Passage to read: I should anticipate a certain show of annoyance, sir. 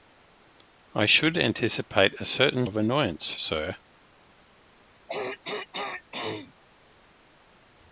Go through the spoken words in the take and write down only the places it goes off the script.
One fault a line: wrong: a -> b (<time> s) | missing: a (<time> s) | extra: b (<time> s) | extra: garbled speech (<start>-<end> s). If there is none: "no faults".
missing: show (2.6 s)